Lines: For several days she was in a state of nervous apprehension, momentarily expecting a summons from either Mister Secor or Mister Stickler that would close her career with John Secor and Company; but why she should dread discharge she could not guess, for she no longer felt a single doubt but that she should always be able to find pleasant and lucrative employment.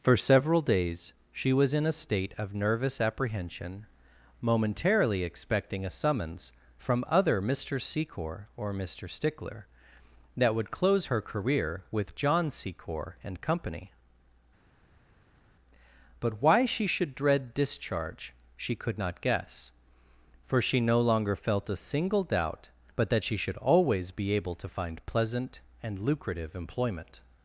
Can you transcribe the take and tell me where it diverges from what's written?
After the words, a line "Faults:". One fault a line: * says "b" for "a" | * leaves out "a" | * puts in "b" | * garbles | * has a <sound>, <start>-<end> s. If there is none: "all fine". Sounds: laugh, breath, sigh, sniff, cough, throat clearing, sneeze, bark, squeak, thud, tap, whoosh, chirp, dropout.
For several days she was in a state of nervous apprehension, momentarily expecting a summons from other Mister Secor or Mister Stickler that would close her career with John Secor and Company; but why she should dread discharge she could not guess, for she no longer felt a single doubt but that she should always be able to find pleasant and lucrative employment.
Faults:
* says "other" for "either"